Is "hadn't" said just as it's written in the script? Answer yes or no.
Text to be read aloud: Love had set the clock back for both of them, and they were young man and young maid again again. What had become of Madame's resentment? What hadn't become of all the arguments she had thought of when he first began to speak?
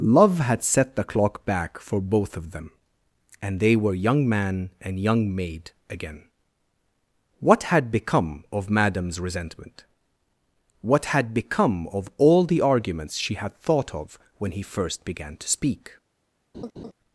no